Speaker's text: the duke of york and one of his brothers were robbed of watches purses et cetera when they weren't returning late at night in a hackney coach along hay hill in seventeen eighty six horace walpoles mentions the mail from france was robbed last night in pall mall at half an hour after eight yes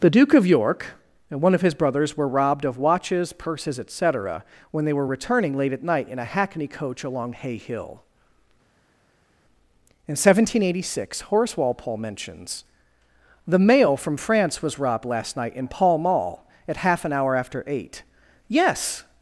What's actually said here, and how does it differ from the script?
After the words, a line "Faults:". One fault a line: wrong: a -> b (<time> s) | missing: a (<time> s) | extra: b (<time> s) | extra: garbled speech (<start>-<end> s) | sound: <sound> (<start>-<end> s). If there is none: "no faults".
the duke of york and one of his brothers were robbed of watches purses et cetera when they were returning late at night in a hackney coach along hay hill in seventeen eighty six horace walpole mentions the mail from france was robbed last night in pall mall at half an hour after eight yes
Faults:
wrong: weren't -> were (4.9 s)
wrong: walpoles -> walpole (11.6 s)